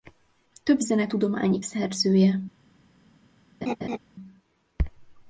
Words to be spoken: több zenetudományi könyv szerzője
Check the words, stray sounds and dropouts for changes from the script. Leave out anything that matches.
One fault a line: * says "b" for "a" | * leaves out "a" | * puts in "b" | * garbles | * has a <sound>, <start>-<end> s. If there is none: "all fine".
* leaves out "könyv"
* has a laugh, 3.6-4.0 s